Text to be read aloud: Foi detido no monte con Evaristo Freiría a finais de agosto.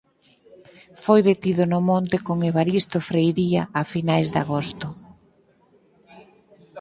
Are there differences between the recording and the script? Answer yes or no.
no